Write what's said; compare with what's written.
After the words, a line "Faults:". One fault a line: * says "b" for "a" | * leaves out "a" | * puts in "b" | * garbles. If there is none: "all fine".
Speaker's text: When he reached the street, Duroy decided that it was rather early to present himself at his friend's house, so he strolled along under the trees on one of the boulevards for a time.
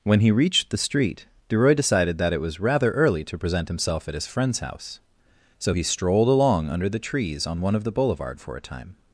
When he reached the street, Duroy decided that it was rather early to present himself at his friend's house, so he strolled along under the trees on one of the boulevard for a time.
Faults:
* says "boulevard" for "boulevards"